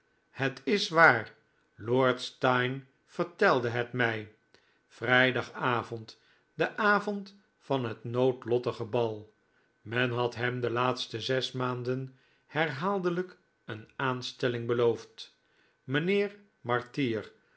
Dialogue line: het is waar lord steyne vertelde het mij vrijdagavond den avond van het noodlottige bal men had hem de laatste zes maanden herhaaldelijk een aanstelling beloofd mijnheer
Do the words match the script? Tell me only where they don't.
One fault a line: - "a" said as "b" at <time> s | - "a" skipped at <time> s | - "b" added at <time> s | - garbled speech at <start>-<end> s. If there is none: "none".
none